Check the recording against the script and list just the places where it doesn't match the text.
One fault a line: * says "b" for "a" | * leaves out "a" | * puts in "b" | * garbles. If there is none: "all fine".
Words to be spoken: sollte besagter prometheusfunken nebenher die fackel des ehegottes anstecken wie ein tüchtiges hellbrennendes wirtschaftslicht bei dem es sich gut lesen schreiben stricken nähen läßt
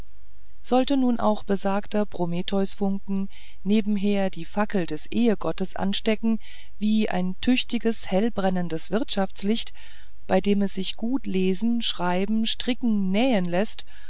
* puts in "nun auch"